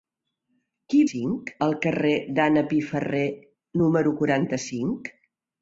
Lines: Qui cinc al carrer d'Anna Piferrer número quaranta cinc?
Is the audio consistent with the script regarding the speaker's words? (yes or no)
yes